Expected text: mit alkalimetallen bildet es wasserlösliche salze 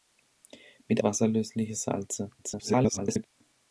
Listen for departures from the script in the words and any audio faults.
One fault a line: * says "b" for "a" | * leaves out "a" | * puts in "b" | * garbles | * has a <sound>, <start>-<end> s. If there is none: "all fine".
* leaves out "alkalimetallen bildet es"
* garbles